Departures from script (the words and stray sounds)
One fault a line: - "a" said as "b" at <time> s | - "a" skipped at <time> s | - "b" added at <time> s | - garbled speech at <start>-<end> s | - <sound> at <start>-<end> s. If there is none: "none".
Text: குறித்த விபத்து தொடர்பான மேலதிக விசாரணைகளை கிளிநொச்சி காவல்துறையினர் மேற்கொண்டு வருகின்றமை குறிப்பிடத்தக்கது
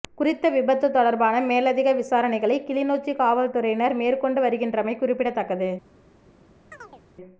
- chirp at 6.7-7.0 s